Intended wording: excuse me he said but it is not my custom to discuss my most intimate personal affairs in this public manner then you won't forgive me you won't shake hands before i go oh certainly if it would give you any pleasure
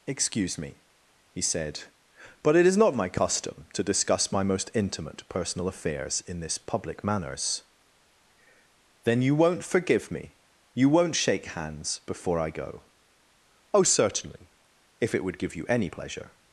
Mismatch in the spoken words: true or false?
true